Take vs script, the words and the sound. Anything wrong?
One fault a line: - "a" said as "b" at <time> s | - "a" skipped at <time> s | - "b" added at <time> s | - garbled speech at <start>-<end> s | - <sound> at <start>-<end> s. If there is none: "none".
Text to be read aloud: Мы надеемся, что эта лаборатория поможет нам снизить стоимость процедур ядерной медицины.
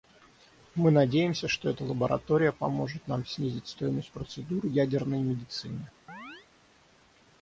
- chirp at 6.1-6.5 s